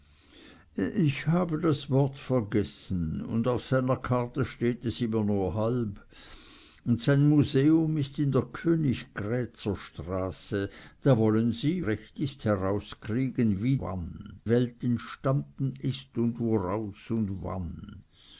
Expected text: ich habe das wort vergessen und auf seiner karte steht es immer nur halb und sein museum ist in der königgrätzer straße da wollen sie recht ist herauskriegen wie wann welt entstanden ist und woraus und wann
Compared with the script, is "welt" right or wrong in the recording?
right